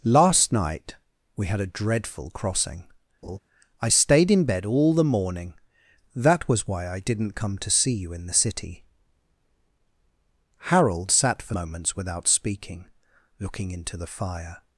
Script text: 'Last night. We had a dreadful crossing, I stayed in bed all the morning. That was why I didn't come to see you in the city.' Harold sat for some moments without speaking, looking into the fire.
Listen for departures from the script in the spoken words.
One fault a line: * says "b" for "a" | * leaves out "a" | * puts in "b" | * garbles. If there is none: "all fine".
* leaves out "some"